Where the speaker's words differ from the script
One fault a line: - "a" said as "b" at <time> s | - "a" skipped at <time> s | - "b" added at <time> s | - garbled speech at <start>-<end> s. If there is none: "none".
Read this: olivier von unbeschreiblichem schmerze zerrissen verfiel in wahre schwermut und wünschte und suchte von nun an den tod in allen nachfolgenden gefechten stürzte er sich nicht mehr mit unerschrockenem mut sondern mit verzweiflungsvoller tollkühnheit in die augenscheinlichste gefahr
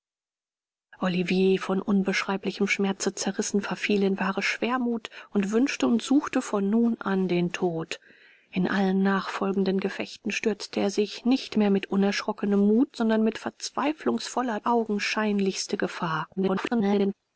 - "tollkühnheit in die" skipped at 14.6 s
- garbled speech at 16.4-17.1 s